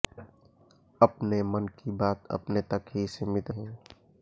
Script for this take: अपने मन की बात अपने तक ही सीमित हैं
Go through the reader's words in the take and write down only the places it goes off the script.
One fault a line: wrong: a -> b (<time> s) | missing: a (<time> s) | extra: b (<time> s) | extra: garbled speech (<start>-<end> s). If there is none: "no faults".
no faults